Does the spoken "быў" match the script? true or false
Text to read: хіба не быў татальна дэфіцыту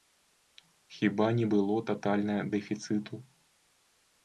false